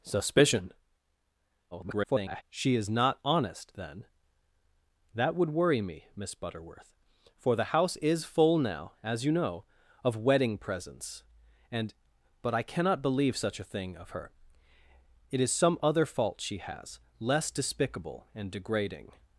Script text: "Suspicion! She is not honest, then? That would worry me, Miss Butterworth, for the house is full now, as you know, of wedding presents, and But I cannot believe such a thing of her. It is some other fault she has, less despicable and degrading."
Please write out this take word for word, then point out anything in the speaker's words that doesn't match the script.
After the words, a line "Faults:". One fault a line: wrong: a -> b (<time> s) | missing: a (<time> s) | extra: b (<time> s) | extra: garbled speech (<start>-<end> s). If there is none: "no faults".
"Suspicion! [garbled] She is not honest, then? That would worry me, Miss Butterworth, for the house is full now, as you know, of wedding presents, and But I cannot believe such a thing of her. It is some other fault she has, less despicable and degrading."
Faults:
extra: garbled speech (1.7-2.4 s)